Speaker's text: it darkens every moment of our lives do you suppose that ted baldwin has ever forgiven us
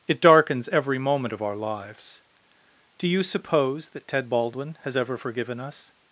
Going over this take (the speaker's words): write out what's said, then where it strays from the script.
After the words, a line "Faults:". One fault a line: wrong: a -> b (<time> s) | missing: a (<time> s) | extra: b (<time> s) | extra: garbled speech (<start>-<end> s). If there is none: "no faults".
it darkens every moment of our lives do you suppose that ted baldwin has ever forgiven us
Faults:
no faults